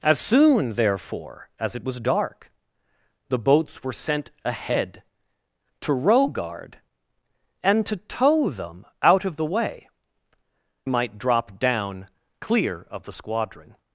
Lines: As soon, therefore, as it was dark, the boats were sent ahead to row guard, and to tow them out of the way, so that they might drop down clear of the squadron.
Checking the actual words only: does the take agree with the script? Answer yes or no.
no